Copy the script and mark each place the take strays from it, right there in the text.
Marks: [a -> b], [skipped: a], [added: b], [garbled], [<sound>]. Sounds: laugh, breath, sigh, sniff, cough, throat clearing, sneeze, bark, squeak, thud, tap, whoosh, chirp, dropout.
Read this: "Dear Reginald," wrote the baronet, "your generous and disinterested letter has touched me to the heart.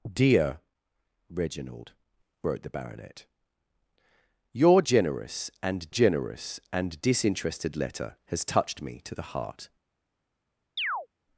"Dear Reginald," wrote the baronet, "your generous and [added: generous and] disinterested letter has touched me to the heart. [chirp]